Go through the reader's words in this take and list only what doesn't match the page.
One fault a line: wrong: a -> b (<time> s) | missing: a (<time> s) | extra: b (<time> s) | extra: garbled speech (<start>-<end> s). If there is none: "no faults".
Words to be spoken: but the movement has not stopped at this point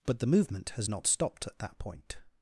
wrong: this -> that (1.6 s)